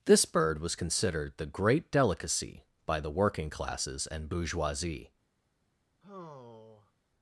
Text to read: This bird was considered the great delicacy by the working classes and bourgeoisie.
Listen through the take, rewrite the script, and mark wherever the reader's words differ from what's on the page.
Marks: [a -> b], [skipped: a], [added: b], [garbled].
This bird was considered the great delicacy by the working classes and bourgeoisie.